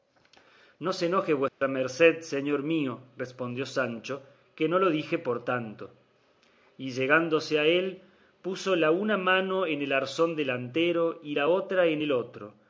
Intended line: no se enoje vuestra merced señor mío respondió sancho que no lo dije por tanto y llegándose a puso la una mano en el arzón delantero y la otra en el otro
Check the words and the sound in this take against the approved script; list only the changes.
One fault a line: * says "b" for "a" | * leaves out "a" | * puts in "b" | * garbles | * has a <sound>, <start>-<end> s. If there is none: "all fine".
* has a dropout, 1.5-1.6 s
* puts in "él"